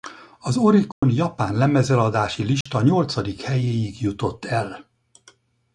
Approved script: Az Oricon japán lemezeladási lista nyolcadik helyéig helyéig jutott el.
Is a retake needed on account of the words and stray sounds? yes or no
yes